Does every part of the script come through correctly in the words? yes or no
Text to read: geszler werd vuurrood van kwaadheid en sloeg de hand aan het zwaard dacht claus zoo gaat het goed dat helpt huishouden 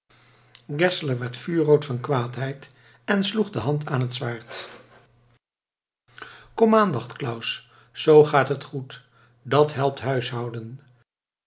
no